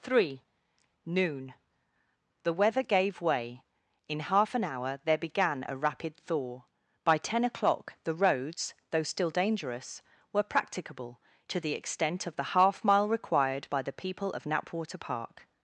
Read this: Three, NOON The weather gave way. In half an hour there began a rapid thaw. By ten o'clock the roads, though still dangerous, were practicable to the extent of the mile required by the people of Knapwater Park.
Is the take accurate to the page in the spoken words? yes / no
no